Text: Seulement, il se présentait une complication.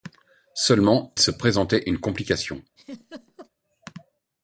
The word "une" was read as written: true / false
true